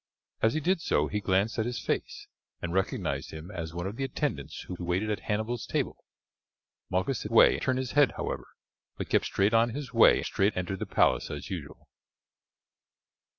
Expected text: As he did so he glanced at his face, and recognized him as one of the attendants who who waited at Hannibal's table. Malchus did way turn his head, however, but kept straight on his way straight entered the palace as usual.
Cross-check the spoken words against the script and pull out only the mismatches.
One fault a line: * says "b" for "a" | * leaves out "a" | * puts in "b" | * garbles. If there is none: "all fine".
all fine